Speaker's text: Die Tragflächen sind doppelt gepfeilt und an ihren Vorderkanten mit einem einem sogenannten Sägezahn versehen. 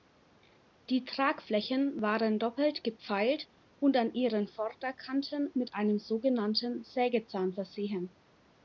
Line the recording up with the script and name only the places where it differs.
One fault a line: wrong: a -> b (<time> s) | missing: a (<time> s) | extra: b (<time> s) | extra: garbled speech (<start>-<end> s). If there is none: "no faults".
wrong: sind -> waren (2.0 s)
missing: einem (6.0 s)